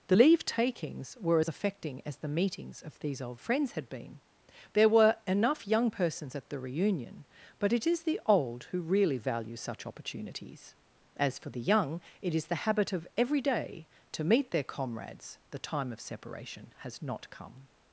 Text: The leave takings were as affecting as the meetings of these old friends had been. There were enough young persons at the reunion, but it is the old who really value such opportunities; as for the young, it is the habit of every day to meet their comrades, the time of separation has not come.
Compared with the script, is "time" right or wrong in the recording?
right